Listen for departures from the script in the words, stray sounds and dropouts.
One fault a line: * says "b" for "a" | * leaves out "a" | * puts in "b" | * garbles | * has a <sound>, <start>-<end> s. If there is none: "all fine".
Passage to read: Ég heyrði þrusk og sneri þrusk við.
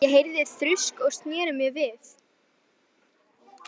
* says "mér" for "þrusk"